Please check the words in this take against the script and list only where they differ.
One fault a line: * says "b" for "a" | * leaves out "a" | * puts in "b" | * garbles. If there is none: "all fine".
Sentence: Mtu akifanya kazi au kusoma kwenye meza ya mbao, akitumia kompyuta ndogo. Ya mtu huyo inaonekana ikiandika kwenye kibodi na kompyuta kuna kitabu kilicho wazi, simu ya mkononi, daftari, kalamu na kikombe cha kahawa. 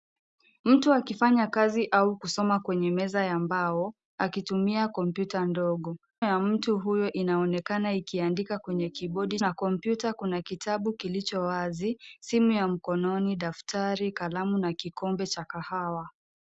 all fine